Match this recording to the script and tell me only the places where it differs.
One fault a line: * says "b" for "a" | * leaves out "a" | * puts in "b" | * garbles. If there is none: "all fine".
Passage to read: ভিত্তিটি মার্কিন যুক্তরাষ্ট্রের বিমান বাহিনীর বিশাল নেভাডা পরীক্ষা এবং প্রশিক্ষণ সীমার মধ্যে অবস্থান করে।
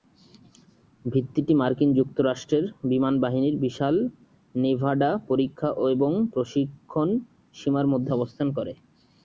all fine